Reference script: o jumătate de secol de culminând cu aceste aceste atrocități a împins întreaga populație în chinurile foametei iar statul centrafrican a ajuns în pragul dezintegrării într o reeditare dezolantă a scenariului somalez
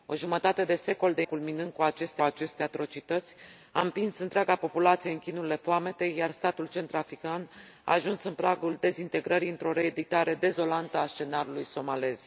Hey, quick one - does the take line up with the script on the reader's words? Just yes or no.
yes